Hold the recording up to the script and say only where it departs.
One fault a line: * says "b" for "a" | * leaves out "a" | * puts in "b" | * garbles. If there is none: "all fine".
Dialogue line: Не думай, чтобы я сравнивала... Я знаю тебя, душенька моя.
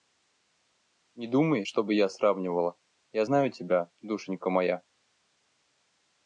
all fine